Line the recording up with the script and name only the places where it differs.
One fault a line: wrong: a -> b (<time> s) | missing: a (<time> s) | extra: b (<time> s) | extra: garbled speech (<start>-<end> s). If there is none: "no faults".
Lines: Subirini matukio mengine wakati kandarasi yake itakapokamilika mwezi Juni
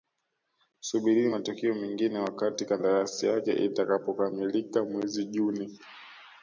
no faults